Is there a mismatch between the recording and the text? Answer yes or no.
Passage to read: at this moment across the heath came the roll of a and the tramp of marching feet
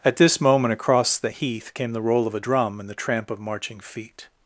yes